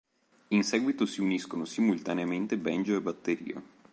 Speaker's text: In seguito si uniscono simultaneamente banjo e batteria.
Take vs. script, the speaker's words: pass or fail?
pass